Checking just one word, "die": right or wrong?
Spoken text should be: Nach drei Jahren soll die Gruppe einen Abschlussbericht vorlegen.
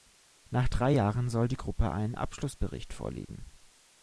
right